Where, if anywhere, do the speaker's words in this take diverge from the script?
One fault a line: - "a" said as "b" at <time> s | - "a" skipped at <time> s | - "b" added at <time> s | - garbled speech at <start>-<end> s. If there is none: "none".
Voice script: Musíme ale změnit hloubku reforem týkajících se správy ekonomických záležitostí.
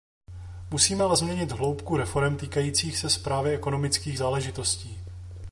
none